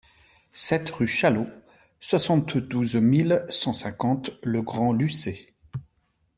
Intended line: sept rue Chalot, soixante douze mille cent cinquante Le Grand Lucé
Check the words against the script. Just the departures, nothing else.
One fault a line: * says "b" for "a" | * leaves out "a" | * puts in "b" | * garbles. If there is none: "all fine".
all fine